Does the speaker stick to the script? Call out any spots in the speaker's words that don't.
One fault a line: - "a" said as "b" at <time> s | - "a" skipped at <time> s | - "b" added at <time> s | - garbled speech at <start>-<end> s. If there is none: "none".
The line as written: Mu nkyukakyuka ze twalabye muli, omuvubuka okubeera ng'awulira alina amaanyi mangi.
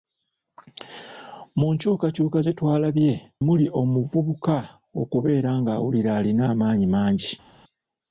none